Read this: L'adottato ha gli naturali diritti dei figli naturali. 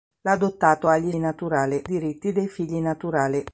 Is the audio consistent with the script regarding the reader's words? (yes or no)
yes